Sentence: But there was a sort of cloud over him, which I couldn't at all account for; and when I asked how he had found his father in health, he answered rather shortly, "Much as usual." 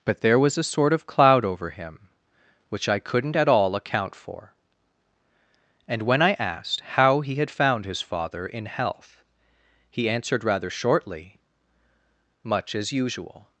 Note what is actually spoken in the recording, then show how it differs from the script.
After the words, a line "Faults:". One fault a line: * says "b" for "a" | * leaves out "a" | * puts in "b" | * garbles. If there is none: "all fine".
But there was a sort of cloud over him, which I couldn't at all account for; and when I asked how he had found his father in health, he answered rather shortly, "Much as usual."
Faults:
all fine